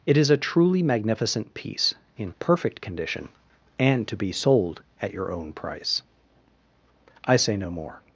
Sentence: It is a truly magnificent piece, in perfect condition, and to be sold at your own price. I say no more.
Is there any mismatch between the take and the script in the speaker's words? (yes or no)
no